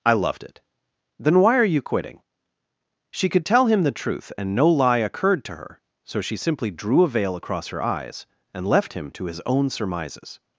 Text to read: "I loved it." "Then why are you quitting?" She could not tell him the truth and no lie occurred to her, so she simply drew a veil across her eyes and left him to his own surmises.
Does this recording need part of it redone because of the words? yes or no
yes